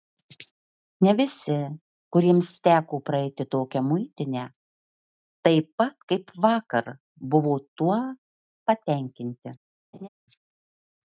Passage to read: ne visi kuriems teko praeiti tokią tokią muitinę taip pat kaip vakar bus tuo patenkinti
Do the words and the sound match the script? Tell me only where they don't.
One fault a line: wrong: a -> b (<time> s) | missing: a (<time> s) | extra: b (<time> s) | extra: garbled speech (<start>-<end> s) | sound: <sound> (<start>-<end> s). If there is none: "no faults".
missing: tokią (3.8 s)
wrong: bus -> buvo (7.3 s)
sound: laugh (9.9-10.1 s)